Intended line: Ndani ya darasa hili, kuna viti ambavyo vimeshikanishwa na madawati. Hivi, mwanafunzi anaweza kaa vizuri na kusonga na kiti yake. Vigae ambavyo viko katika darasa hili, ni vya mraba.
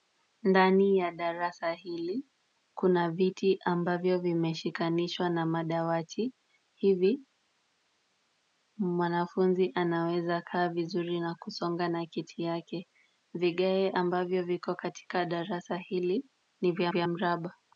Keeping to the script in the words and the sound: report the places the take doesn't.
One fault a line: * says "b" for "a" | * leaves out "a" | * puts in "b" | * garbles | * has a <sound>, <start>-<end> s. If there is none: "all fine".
* puts in "vya"